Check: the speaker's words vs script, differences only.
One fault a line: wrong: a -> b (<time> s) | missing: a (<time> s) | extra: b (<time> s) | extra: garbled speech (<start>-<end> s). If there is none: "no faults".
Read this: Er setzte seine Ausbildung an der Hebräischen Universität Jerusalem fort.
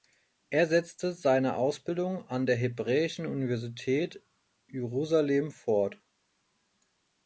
no faults